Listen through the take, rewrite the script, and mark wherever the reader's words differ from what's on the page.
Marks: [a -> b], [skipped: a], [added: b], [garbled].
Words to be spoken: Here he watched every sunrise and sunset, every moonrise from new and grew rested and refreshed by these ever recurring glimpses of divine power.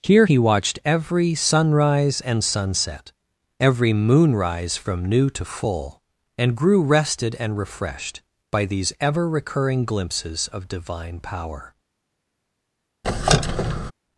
Here he watched every sunrise and sunset, every moonrise from new [added: to full] and grew rested and refreshed by these ever recurring glimpses of divine power.